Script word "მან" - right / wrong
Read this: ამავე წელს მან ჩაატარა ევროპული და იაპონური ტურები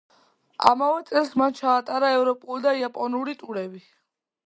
right